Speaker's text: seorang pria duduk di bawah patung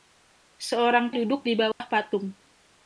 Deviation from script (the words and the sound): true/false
true